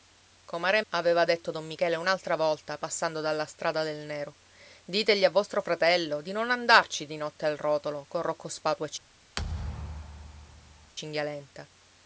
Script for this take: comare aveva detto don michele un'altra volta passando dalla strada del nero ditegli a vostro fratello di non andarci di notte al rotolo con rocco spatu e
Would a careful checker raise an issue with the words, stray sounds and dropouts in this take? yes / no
yes